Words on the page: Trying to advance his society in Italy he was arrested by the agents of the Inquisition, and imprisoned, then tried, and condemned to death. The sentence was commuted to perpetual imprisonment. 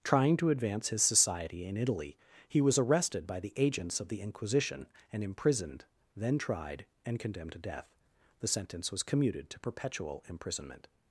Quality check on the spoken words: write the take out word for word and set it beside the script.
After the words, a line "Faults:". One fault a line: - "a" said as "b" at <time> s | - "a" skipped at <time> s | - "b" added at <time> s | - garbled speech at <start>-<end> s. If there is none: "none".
Trying to advance his society in Italy he was arrested by the agents of the Inquisition, and imprisoned, then tried, and condemned to death. The sentence was commuted to perpetual imprisonment.
Faults:
none